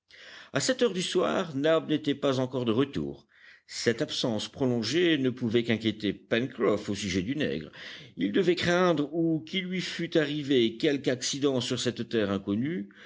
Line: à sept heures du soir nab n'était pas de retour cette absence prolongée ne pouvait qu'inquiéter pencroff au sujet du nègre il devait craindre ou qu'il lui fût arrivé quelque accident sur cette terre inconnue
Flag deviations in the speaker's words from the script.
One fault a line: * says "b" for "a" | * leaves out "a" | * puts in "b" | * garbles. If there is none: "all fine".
* puts in "encore"